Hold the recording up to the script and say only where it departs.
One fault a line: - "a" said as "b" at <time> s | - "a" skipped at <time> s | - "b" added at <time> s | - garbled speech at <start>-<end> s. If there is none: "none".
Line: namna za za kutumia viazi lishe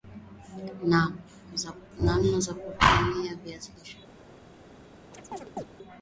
- "za" skipped at 2.5 s